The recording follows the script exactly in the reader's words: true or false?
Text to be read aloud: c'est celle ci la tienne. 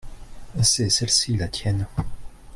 true